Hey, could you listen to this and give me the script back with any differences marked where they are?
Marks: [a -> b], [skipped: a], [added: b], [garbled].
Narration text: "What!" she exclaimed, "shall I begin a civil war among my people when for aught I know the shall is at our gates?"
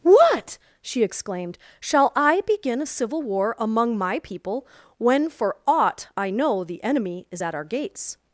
"What!" she exclaimed, "shall I begin a civil war among my people when for aught I know the [shall -> enemy] is at our gates?"